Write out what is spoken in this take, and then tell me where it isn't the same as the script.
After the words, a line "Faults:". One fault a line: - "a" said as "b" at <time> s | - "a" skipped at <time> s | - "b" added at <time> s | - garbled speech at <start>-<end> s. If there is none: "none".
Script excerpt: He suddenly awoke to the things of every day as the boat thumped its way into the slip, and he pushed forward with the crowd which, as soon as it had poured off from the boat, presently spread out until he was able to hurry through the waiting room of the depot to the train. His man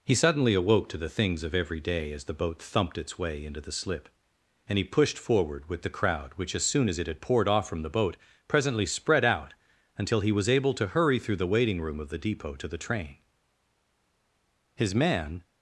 He suddenly awoke to the things of every day as the boat thumped its way into the slip, and he pushed forward with the crowd which, as soon as it had poured off from the boat, presently spread out until he was able to hurry through the waiting room of the depot to the train. His man
Faults:
none